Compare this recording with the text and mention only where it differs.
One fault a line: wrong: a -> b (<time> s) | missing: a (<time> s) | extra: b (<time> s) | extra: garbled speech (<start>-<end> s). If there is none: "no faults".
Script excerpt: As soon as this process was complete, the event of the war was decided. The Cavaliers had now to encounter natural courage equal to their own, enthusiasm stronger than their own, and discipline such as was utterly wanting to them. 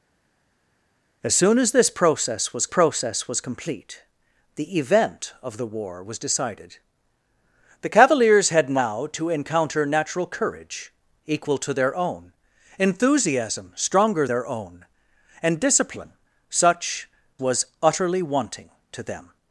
extra: process was (2.7 s)
missing: than (14.3 s)
missing: as (17.1 s)